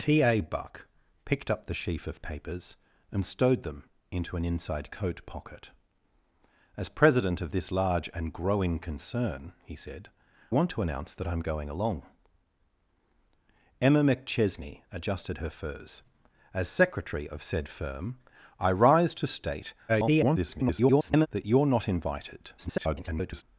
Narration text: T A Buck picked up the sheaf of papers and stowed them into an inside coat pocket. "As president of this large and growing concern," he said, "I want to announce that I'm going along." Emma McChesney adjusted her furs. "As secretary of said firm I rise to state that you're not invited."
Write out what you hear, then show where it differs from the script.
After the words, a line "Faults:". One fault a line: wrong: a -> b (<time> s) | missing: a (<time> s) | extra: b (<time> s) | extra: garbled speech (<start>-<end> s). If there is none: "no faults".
T A Buck picked up the sheaf of papers and stowed them into an inside coat pocket. "As president of this large and growing concern," he said, "want to announce that I'm going along." Emma McChesney adjusted her furs. "As secretary of said firm I rise to state [garbled] that you're not invited." [garbled]
Faults:
missing: I (10.1 s)
extra: garbled speech (19.9-21.3 s)
extra: garbled speech (22.6-23.4 s)